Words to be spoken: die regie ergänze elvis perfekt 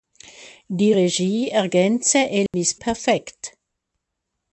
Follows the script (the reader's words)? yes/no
yes